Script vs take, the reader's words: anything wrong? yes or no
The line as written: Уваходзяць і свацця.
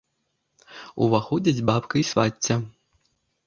yes